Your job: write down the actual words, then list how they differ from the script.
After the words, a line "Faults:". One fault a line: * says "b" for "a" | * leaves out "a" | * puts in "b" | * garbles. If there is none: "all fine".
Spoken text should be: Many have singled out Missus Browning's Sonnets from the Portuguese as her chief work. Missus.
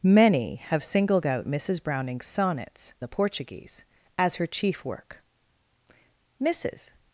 Many have singled out Missus Browning's Sonnets the Portuguese as her chief work. Missus.
Faults:
* leaves out "from"